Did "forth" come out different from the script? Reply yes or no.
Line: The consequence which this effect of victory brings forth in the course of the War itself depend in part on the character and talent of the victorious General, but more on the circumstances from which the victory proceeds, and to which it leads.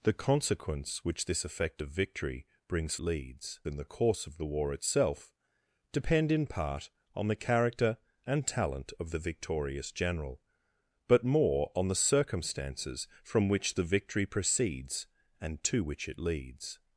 yes